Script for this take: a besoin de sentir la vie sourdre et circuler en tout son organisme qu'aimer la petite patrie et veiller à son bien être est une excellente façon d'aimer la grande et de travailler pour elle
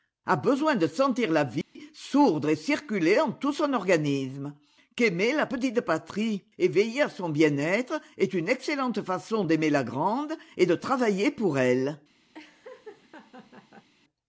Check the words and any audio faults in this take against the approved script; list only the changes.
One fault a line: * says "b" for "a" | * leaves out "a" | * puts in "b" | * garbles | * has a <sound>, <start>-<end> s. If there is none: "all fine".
* has a dropout, 1.6-1.8 s
* has a laugh, 12.3-13.9 s